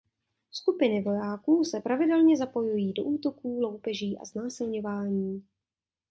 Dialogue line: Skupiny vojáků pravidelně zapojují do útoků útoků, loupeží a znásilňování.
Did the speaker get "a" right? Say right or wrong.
right